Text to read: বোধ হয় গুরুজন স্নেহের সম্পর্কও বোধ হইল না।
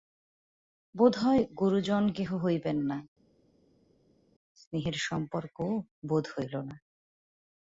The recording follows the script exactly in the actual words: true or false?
false